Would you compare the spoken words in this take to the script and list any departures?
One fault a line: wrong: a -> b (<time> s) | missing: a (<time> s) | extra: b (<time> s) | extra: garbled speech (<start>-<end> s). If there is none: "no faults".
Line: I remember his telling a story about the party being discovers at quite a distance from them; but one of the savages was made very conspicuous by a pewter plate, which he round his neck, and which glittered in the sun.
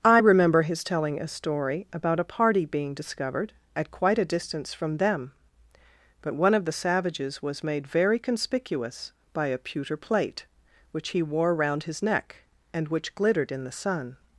wrong: the -> a (2.2 s)
wrong: discovers -> discovered (2.9 s)
extra: wore (11.2 s)